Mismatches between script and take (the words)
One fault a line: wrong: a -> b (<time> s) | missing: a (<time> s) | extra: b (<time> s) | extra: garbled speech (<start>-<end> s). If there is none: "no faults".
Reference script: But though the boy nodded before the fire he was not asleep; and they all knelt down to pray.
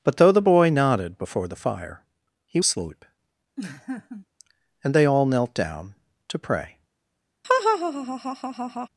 missing: was not (2.6 s)